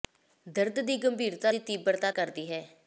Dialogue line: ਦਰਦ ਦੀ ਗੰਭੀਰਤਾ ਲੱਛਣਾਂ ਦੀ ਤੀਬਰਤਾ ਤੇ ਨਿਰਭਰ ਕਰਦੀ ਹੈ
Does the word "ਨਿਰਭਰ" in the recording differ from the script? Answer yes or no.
yes